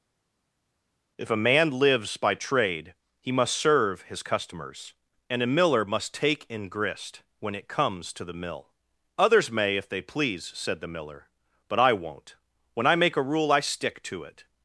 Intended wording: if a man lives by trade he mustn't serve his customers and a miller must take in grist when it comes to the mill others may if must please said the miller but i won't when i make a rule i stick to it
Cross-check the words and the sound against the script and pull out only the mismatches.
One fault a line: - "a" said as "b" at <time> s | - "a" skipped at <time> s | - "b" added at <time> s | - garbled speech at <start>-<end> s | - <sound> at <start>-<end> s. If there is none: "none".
- "mustn't" said as "must" at 3.3 s
- "must" said as "they" at 9.9 s